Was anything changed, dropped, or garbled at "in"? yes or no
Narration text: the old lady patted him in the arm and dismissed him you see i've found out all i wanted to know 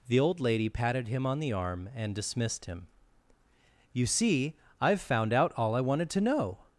yes